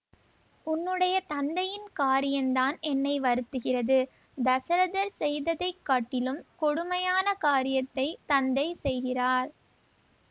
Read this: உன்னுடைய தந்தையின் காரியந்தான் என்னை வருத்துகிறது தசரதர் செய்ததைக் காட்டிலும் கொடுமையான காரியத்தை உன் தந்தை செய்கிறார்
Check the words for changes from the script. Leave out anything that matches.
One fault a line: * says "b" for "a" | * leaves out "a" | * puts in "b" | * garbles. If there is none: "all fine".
* leaves out "உன்"